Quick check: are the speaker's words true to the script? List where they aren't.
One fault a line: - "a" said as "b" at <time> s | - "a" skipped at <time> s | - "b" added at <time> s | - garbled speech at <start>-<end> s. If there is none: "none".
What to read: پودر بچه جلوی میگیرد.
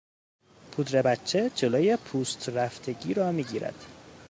- "پوست رفتگی را" added at 2.0 s